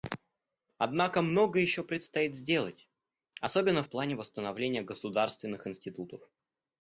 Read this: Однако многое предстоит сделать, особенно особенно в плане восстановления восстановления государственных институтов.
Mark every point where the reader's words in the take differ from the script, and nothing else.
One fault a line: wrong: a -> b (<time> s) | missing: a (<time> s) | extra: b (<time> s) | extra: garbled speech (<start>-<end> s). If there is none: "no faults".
extra: еще (1.6 s)
missing: особенно (3.8 s)
missing: восстановления (4.8 s)